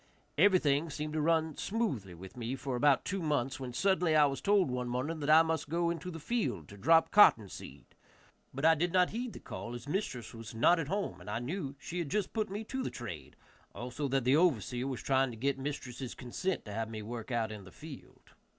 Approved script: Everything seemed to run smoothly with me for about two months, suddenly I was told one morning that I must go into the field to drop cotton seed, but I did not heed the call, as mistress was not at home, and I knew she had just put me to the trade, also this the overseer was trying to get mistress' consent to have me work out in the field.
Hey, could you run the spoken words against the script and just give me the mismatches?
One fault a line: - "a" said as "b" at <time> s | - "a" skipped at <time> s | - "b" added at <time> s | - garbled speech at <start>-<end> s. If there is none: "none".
- "when" added at 3.6 s
- "this" said as "that" at 14.1 s